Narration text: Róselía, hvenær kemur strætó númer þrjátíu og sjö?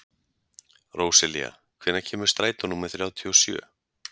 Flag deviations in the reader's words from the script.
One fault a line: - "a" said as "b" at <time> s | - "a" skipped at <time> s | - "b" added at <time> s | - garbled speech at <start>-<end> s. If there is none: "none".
none